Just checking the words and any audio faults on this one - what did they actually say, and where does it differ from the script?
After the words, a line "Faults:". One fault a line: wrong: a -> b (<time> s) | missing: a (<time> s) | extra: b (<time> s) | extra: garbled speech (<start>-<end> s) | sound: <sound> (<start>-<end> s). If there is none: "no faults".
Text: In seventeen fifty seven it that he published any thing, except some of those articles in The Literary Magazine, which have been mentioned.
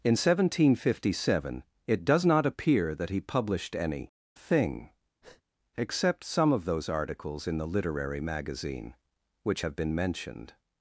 In seventeen fifty seven it does not appear that he published any thing, except some of those articles in The Literary Magazine, which have been mentioned.
Faults:
extra: does not appear (2.1 s)
sound: breath (5.2-5.4 s)